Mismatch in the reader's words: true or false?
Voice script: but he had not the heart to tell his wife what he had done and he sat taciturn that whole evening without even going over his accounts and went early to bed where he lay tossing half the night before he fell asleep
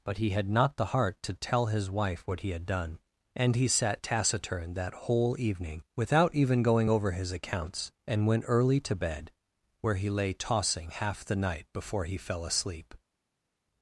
false